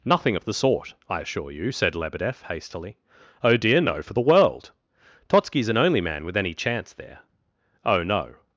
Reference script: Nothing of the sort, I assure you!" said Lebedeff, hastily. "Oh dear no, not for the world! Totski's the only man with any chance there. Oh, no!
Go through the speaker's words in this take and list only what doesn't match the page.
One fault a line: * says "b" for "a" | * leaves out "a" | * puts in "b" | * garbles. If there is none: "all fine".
* leaves out "not"
* says "an" for "the"